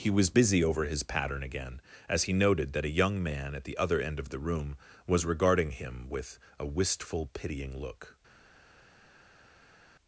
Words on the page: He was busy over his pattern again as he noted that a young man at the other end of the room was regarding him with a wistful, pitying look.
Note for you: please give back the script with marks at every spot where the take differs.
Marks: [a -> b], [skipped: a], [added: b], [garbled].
He was busy over his pattern again as he noted that a young man at the other end of the room was regarding him with a wistful, pitying look.